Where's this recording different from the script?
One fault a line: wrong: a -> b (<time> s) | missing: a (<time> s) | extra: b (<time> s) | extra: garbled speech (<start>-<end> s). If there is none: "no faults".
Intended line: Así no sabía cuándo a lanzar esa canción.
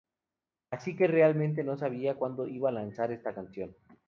extra: que realmente (1.0 s)
extra: iba (2.5 s)
wrong: esa -> esta (3.1 s)